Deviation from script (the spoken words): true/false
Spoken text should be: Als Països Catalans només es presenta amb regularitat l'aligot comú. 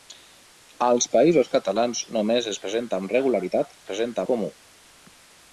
true